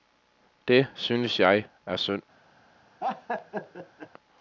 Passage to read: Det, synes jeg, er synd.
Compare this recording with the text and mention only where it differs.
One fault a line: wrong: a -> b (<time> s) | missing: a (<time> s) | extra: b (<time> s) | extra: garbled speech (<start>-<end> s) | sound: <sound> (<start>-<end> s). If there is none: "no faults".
sound: laugh (3.0-4.1 s)